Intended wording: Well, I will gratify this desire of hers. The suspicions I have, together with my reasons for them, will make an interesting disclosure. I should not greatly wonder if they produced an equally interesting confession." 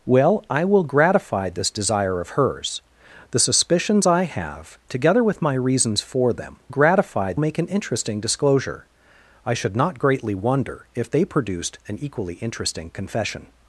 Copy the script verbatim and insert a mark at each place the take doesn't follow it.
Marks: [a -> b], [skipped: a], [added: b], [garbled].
Well, I will gratify this desire of hers. The suspicions I have, together with my reasons for them, [will -> gratify] make an interesting disclosure. I should not greatly wonder if they produced an equally interesting confession."